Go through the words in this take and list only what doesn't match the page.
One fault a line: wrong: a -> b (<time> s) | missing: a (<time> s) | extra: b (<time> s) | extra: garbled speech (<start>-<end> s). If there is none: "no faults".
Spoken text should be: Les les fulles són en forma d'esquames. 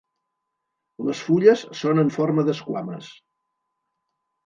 missing: les (1.2 s)